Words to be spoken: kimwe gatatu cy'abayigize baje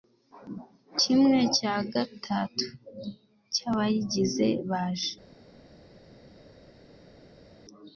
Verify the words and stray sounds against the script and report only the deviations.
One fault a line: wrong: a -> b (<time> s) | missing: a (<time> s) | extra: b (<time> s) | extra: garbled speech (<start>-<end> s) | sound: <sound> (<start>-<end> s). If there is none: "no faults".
extra: cya (1.6 s)